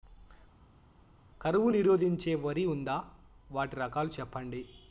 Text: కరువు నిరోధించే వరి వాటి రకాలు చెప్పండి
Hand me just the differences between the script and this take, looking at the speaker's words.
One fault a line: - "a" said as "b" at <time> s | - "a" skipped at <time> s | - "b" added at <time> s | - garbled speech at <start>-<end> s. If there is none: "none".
- "ఉందా" added at 2.7 s